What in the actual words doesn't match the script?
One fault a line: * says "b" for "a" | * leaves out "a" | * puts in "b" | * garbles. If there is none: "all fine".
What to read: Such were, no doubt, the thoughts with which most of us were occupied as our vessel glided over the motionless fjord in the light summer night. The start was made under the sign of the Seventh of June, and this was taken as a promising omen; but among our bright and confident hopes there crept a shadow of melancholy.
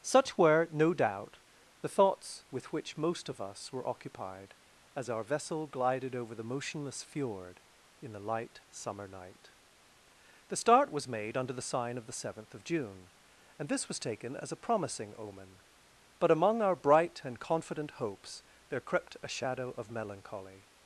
all fine